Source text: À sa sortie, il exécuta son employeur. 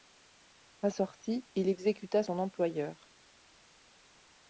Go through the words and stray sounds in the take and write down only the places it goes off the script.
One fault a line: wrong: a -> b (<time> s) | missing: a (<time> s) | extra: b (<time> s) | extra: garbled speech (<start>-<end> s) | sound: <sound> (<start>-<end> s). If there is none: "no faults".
missing: sa (0.9 s)